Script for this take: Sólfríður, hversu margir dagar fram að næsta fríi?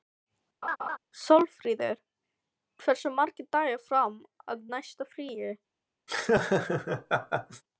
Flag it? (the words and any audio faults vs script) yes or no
yes